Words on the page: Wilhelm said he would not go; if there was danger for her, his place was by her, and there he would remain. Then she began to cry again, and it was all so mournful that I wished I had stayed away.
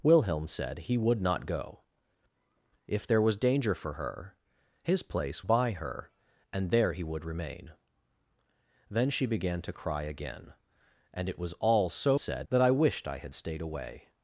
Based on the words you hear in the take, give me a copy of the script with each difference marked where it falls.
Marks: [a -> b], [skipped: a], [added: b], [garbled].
Wilhelm said he would not go; if there was danger for her, his place [skipped: was] by her, and there he would remain. Then she began to cry again, and it was all so [mournful -> said] that I wished I had stayed away.